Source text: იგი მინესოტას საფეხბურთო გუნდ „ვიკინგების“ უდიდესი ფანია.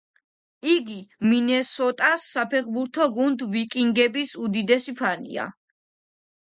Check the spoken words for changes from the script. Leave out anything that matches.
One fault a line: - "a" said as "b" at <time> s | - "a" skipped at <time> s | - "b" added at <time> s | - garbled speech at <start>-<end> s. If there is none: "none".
none